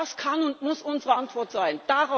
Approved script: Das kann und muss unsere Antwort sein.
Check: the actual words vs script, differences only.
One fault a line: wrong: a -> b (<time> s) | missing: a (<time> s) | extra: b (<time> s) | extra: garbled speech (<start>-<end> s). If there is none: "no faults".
no faults